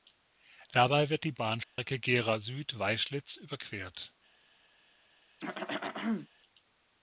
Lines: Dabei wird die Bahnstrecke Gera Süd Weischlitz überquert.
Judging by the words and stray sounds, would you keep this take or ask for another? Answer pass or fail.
fail